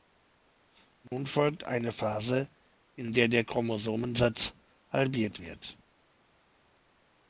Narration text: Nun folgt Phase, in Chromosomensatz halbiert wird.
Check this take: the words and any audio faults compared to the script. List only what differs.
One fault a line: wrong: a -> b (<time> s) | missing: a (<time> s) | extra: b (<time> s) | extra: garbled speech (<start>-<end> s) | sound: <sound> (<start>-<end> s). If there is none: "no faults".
sound: dropout (1.1-1.1 s)
extra: eine (1.6 s)
extra: der der (3.1 s)